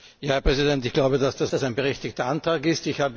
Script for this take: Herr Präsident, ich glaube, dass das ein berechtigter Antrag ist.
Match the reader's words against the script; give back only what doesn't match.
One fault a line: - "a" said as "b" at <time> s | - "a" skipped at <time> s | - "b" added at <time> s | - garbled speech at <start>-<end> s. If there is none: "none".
- "das" added at 1.5 s